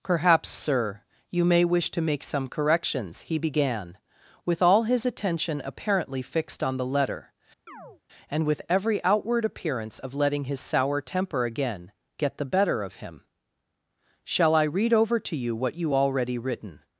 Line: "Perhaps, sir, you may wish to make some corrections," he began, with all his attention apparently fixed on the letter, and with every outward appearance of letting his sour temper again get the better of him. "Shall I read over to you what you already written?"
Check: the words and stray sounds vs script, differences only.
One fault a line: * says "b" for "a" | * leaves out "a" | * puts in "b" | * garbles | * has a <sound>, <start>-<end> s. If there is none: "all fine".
* has a chirp, 7.7-8.0 s